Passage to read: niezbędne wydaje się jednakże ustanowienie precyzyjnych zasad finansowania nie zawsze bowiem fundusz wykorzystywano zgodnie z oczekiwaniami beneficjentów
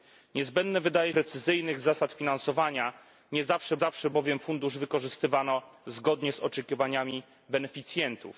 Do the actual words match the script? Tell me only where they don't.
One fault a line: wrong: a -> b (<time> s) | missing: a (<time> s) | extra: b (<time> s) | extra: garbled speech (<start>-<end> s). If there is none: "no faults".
missing: się jednakże ustanowienie (1.1 s)
extra: zawsze (3.8 s)